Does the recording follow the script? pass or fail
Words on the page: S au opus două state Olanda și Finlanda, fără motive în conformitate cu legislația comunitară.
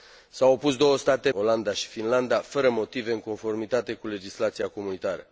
pass